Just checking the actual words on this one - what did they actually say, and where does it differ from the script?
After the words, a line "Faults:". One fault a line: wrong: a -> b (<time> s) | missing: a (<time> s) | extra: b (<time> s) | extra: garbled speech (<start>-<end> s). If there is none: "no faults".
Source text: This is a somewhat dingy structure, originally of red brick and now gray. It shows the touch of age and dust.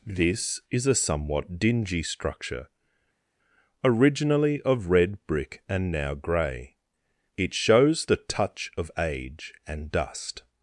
This is a somewhat dingy structure, originally of red brick and now gray. It shows the touch of age and dust.
Faults:
no faults